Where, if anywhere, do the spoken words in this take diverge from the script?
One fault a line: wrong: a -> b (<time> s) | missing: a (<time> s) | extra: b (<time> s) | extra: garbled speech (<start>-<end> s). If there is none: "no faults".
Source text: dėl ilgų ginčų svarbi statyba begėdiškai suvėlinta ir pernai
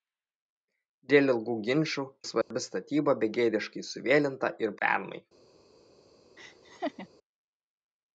no faults